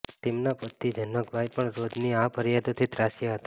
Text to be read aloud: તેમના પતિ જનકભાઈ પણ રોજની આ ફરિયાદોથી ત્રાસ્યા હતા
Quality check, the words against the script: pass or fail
pass